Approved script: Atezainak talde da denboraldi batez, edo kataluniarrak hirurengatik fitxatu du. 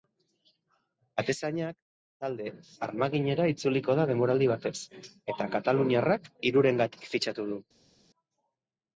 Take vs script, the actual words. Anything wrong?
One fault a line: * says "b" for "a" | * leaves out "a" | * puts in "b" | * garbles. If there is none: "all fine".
* puts in "armaginera itzuliko"
* says "eta" for "edo"